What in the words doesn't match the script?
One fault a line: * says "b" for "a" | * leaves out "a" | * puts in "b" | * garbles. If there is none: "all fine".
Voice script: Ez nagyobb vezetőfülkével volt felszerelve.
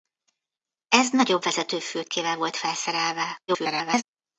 * garbles